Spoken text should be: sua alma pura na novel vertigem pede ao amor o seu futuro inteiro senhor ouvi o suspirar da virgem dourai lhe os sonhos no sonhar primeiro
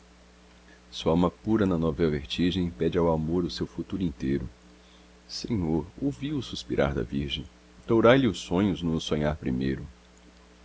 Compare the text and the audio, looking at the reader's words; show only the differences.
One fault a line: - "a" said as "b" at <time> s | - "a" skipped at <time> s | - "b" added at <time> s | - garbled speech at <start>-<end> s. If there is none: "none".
none